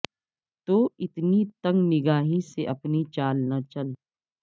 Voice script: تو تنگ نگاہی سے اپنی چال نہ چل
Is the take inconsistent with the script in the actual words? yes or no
yes